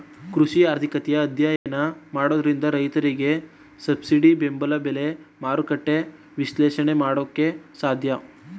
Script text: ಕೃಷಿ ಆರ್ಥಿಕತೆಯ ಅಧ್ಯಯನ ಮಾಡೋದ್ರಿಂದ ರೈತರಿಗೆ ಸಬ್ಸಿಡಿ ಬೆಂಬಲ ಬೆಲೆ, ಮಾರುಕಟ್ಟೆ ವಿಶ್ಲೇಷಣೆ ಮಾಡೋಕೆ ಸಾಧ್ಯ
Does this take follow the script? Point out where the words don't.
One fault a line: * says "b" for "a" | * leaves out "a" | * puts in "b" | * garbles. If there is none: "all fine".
all fine